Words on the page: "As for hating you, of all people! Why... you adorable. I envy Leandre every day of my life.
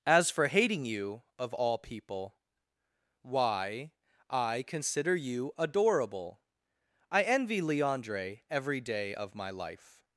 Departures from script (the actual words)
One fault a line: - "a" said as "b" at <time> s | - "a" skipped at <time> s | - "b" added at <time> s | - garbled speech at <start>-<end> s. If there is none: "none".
- "I consider" added at 4.3 s